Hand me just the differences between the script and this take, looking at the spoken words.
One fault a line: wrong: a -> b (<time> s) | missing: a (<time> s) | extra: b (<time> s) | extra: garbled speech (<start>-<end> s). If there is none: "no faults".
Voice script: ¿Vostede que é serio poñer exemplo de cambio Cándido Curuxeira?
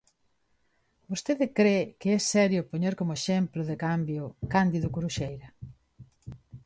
extra: cre (1.6 s)
extra: como (3.0 s)